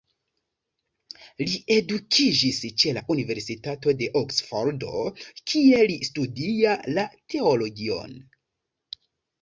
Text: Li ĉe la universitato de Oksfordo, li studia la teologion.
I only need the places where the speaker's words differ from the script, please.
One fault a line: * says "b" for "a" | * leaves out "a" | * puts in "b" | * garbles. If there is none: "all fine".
* puts in "edukiĝis"
* puts in "kie"